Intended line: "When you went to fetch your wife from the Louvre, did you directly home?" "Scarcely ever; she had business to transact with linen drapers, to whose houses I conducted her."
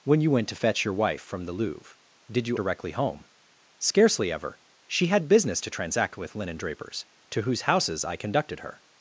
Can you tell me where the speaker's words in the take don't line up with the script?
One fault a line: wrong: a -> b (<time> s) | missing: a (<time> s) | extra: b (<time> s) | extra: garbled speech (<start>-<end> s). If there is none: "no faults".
no faults